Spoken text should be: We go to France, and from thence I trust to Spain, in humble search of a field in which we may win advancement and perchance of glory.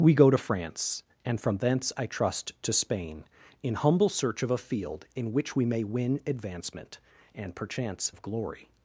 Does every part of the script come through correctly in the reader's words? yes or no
yes